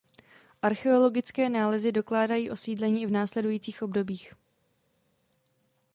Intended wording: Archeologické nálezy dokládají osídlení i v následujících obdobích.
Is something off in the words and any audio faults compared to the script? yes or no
no